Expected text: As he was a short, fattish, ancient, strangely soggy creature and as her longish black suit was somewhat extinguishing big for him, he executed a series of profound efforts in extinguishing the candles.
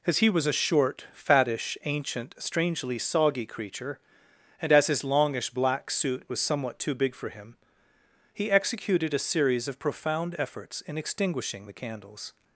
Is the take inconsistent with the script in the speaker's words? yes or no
yes